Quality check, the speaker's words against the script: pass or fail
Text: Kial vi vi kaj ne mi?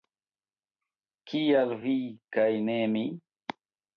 fail